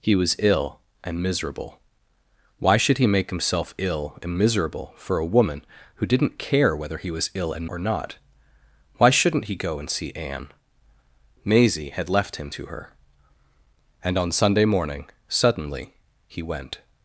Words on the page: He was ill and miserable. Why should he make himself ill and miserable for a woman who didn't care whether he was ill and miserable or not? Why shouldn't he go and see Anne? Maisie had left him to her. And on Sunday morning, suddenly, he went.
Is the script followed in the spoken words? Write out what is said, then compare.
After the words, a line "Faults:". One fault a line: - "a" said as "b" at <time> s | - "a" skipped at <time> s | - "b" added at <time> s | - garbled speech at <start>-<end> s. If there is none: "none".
He was ill and miserable. Why should he make himself ill and miserable for a woman who didn't care whether he was ill and or not? Why shouldn't he go and see Anne? Maisie had left him to her. And on Sunday morning, suddenly, he went.
Faults:
- "miserable" skipped at 7.7 s